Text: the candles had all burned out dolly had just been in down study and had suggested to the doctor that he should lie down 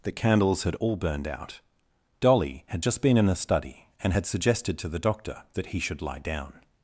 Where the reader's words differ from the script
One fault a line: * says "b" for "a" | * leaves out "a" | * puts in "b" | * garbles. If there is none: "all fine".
* says "the" for "down"